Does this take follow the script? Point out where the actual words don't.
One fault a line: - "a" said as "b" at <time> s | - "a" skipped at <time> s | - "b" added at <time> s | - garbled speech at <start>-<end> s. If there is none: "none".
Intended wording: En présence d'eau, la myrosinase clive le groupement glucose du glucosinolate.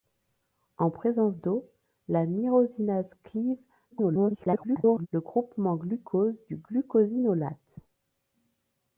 - garbled speech at 3.9-5.1 s